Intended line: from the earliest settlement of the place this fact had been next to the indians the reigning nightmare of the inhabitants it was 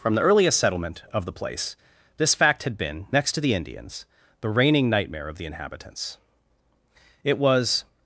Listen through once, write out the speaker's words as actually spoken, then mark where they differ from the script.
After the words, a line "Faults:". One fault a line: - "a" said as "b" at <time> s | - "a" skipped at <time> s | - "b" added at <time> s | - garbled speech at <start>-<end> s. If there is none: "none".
from the earliest settlement of the place this fact had been next to the indians the reigning nightmare of the inhabitants it was
Faults:
none